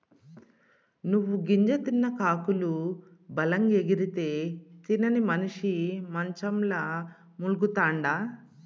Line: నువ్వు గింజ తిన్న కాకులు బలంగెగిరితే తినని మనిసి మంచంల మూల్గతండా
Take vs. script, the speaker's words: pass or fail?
pass